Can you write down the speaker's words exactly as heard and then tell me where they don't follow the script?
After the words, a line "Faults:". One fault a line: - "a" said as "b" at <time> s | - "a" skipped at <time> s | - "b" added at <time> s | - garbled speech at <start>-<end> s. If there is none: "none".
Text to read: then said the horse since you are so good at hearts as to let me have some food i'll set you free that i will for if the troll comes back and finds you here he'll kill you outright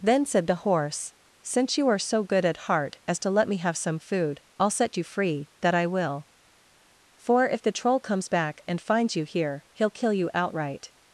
then said the horse since you are so good at heart as to let me have some food i'll set you free that i will for if the troll comes back and finds you here he'll kill you outright
Faults:
- "hearts" said as "heart" at 2.6 s